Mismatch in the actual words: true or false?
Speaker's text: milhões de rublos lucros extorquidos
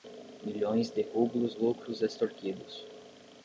false